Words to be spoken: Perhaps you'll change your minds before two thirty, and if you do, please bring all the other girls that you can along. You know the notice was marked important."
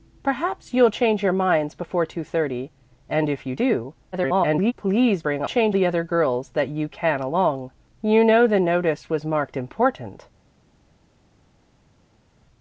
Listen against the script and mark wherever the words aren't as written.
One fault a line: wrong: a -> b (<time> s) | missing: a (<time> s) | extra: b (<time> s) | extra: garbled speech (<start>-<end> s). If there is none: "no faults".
extra: garbled speech (4.1-4.7 s)
wrong: all -> change (5.4 s)